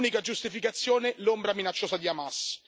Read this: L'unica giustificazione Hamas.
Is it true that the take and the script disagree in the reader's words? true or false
true